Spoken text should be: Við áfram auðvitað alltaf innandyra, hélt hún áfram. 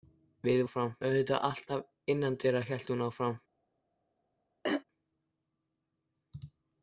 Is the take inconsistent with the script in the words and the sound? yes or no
yes